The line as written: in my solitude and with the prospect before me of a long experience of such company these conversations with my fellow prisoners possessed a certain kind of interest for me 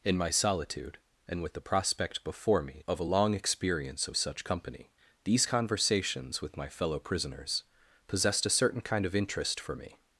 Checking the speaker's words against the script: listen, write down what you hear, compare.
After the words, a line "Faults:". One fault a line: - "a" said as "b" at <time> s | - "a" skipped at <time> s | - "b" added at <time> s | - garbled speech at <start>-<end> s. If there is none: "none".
in my solitude and with the prospect before me of a long experience of such company these conversations with my fellow prisoners possessed a certain kind of interest for me
Faults:
none